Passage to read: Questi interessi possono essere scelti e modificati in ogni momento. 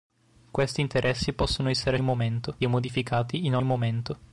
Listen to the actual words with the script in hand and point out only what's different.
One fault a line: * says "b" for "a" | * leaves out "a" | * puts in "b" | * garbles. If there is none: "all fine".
* says "momento" for "scelti"
* leaves out "ogni"